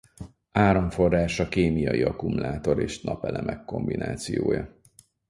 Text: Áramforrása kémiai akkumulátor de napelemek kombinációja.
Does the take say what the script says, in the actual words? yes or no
no